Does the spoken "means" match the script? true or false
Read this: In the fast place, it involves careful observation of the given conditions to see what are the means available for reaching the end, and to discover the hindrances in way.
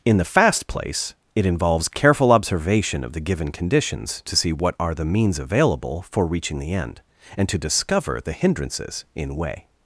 true